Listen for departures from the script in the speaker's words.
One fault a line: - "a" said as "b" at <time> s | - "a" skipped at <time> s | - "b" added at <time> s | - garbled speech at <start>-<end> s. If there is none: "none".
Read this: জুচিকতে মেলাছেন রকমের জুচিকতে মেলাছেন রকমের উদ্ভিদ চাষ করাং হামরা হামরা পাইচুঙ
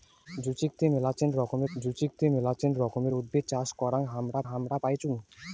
none